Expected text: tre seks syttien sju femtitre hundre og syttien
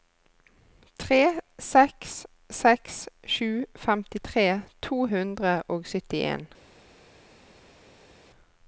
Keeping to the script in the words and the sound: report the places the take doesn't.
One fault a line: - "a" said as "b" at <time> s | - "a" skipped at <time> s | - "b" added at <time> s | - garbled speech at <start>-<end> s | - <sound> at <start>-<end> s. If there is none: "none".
- "syttien" said as "seks" at 2.6 s
- "to" added at 4.9 s